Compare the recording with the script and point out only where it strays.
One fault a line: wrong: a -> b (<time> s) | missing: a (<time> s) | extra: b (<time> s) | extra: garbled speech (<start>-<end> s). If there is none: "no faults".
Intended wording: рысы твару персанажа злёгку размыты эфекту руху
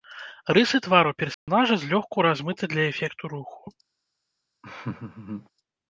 extra: для (2.7 s)